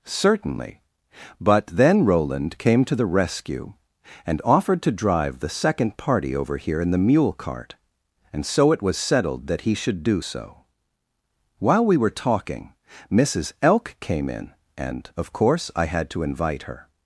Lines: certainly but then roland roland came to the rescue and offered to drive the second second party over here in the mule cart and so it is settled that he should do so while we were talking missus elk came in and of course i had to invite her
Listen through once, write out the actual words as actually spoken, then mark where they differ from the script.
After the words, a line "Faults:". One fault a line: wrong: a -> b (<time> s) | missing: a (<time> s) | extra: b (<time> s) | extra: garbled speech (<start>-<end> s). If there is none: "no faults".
certainly but then roland came to the rescue and offered to drive the second party over here in the mule cart and so it was settled that he should do so while we were talking missus elk came in and of course i had to invite her
Faults:
missing: roland (2.6 s)
missing: second (6.0 s)
wrong: is -> was (8.8 s)